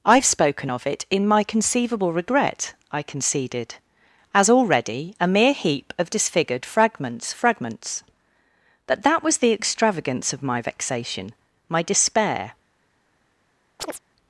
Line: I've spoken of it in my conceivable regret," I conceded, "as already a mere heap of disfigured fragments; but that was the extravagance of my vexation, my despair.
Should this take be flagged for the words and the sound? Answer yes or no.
yes